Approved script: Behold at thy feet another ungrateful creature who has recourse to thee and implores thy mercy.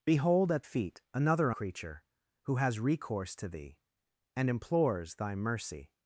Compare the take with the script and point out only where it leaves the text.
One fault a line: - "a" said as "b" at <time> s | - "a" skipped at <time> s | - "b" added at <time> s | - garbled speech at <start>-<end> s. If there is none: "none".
- "thy" skipped at 0.7 s
- "ungrateful" skipped at 1.5 s